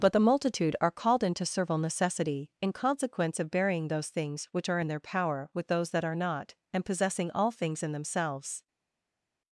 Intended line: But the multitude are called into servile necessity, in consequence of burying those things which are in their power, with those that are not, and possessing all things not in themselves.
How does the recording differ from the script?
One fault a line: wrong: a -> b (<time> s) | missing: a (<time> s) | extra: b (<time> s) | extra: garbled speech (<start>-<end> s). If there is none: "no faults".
missing: not (7.8 s)